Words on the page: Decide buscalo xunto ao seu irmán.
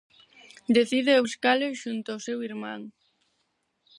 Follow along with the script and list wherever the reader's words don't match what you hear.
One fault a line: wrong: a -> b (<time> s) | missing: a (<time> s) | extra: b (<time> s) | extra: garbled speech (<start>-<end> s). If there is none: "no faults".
no faults